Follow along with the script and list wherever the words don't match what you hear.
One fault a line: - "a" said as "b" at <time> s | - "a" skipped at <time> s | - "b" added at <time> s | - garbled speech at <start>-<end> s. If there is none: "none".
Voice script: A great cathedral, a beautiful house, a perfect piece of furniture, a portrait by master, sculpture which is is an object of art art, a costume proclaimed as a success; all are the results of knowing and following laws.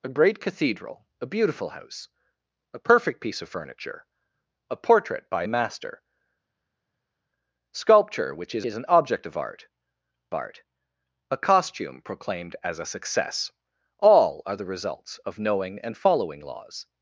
none